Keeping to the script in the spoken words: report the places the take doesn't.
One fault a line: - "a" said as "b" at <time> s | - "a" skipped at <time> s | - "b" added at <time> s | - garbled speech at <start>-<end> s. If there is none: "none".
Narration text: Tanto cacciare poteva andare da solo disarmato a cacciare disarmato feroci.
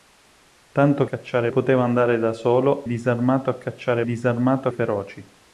none